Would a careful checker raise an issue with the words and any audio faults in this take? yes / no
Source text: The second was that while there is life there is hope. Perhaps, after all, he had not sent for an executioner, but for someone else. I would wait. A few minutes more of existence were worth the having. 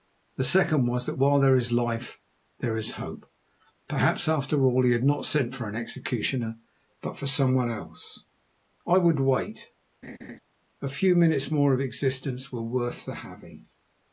yes